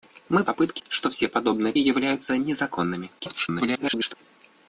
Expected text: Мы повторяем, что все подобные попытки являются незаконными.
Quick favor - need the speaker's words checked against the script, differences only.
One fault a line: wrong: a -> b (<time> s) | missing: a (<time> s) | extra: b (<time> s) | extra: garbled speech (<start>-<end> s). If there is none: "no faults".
wrong: повторяем -> попытки (0.4 s)
missing: попытки (1.7 s)
extra: garbled speech (3.2-4.1 s)